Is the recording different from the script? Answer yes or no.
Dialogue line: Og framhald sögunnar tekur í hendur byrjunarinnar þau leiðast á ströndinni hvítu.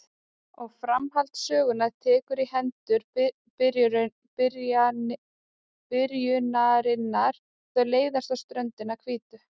no